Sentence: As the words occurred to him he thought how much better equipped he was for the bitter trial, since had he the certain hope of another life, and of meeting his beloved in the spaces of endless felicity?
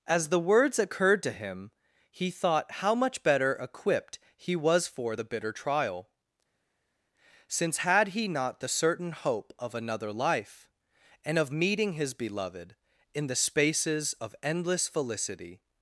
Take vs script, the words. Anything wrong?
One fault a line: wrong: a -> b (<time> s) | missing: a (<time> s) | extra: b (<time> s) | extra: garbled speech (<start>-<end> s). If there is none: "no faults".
extra: not (8.3 s)